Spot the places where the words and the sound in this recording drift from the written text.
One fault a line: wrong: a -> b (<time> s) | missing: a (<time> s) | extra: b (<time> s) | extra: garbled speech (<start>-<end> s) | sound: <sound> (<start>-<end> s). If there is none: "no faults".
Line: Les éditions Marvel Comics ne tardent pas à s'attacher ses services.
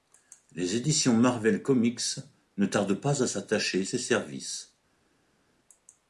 no faults